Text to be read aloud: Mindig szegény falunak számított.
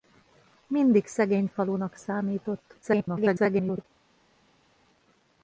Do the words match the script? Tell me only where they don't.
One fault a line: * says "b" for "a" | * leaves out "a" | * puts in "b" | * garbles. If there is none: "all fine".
* garbles